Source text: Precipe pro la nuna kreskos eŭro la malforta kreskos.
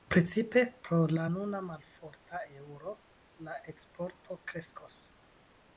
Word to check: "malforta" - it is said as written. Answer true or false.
false